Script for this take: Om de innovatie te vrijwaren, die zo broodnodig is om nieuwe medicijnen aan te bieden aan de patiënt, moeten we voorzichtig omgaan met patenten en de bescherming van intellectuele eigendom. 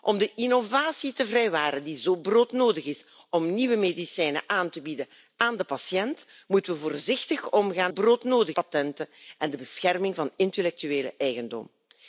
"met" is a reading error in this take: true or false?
true